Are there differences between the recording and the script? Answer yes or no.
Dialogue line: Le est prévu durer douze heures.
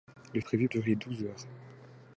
no